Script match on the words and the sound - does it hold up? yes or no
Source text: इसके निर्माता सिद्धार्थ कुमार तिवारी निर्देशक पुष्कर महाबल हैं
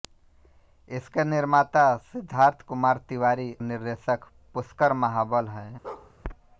no